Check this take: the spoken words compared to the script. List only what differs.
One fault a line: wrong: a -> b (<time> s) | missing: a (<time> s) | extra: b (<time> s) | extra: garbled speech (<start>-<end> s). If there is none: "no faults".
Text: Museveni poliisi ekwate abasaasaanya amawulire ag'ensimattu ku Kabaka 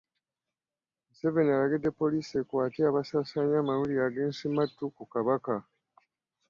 extra: alagidde (1.5 s)